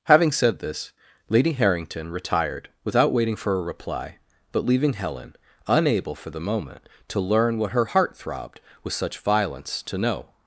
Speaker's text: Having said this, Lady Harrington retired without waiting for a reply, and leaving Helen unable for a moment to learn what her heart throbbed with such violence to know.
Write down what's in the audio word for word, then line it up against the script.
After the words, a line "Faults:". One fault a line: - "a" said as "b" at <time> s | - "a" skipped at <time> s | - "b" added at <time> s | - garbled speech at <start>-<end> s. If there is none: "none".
Having said this, Lady Harrington retired without waiting for a reply, but leaving Helen unable for the moment to learn what her heart throbbed with such violence to know.
Faults:
- "and" said as "but" at 4.5 s
- "a" said as "the" at 6.3 s